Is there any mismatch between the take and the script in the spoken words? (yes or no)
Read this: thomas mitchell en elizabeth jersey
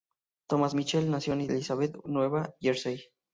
yes